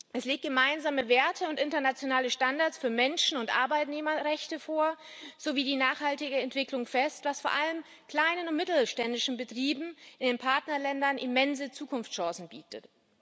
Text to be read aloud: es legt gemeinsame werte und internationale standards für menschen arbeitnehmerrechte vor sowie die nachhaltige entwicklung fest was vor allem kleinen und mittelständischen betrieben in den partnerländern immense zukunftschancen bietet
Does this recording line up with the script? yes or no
no